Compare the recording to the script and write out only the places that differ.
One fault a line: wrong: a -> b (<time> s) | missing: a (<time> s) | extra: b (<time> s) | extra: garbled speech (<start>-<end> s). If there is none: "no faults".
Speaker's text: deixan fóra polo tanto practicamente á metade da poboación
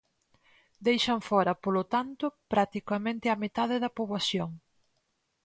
no faults